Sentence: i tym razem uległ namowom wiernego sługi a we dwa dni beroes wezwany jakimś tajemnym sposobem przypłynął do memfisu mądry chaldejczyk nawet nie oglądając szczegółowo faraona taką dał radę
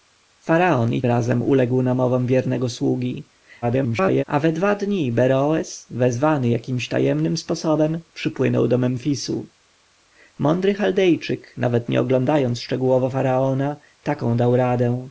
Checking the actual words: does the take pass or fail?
fail